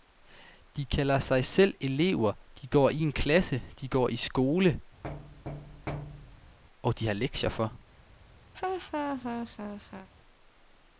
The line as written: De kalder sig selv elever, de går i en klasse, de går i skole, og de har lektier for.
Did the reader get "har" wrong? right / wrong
right